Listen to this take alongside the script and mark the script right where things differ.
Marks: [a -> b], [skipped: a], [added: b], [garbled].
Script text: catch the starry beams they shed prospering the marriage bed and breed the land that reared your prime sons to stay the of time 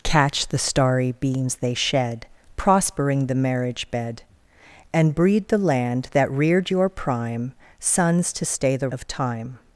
catch the starry beams they shed prospering the marriage bed and breed the land that reared your prime sons to stay the of time